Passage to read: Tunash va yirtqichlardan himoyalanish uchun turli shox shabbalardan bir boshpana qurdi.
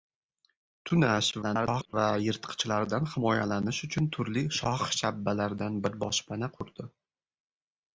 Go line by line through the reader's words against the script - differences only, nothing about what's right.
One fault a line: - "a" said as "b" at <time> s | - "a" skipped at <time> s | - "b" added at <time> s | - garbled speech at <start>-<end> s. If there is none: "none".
- garbled speech at 1.4-1.9 s